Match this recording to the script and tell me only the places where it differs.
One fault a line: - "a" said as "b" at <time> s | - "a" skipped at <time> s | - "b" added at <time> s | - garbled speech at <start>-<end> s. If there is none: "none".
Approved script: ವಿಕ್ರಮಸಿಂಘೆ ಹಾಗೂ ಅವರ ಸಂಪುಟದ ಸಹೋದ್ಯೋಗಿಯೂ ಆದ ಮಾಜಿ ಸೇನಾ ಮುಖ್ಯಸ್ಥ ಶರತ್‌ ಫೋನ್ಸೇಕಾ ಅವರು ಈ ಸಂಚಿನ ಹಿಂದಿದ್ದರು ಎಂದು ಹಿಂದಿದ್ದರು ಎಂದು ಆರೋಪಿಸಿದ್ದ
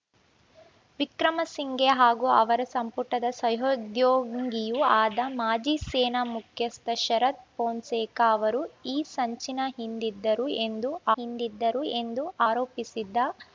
none